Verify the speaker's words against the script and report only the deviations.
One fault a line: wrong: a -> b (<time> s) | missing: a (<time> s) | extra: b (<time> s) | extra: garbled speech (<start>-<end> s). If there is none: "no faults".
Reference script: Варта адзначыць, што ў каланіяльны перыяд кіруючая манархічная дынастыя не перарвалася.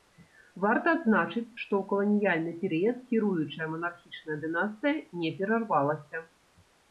no faults